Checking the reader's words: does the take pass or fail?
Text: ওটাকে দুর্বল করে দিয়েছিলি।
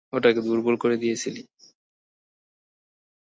pass